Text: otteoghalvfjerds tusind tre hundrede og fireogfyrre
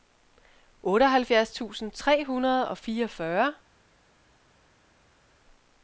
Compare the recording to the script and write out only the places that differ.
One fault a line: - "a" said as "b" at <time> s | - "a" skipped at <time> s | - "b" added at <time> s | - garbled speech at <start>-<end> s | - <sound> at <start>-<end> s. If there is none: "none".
none